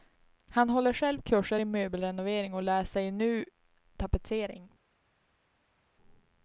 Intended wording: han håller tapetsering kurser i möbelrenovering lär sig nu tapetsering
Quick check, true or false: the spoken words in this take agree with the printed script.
false